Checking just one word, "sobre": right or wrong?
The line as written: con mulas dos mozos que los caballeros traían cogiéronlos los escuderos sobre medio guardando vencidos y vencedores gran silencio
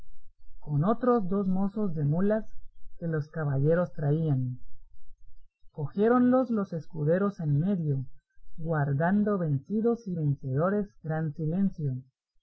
wrong